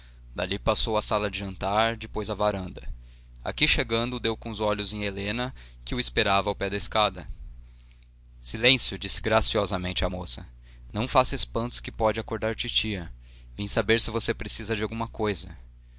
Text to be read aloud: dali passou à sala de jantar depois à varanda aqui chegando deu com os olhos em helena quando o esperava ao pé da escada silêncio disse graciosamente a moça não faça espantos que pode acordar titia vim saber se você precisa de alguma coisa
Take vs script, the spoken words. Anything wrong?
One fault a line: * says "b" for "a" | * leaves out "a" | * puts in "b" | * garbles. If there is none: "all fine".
* says "que" for "quando"